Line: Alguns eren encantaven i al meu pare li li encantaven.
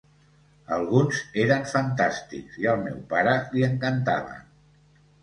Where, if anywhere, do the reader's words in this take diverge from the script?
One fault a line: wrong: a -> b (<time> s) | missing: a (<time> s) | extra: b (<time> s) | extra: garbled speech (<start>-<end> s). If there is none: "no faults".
wrong: encantaven -> fantàstics (1.7 s)
missing: li (3.7 s)